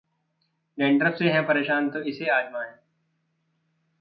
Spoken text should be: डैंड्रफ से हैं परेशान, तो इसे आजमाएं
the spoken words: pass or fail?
pass